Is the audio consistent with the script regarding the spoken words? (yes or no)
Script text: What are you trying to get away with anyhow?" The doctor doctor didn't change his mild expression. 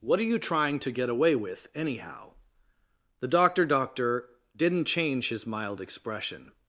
yes